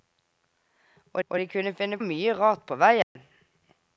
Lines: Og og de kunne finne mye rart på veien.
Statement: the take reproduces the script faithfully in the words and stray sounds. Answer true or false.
false